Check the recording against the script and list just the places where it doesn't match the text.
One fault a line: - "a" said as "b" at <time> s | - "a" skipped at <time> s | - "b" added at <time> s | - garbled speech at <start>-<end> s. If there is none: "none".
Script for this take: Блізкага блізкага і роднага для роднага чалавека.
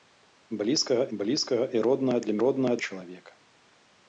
none